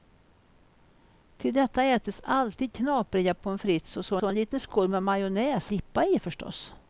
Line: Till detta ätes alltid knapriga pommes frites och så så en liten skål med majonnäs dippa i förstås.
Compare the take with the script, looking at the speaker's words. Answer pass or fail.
pass